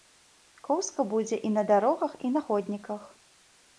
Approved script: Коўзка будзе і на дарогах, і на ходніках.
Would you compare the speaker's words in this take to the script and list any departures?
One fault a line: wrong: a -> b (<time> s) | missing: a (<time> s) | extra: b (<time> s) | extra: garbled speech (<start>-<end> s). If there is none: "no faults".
no faults